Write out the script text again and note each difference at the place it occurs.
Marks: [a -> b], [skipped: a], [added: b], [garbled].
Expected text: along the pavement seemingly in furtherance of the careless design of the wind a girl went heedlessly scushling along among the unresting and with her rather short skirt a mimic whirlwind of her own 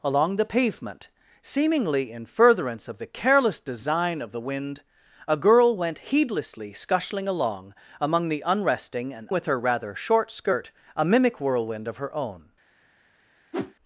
along the pavement seemingly in furtherance of the careless design of the wind a girl went heedlessly scushling along among the unresting and with her rather short skirt a mimic whirlwind of her own